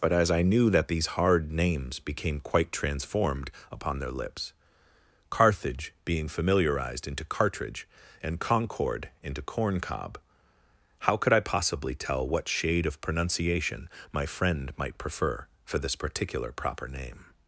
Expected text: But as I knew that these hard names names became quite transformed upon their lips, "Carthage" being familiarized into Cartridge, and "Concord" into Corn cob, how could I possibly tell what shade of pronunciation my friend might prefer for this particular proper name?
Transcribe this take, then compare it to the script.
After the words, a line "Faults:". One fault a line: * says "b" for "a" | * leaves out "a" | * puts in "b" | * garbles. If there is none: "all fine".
But as I knew that these hard names became quite transformed upon their lips, "Carthage" being familiarized into Cartridge, and "Concord" into Corn cob, how could I possibly tell what shade of pronunciation my friend might prefer for this particular proper name?
Faults:
* leaves out "names"